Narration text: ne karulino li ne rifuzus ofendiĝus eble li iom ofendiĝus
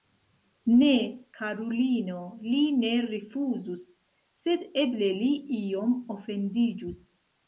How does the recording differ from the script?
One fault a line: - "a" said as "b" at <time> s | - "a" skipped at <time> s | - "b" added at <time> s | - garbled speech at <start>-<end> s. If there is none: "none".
- "ofendiĝus" said as "sed" at 4.5 s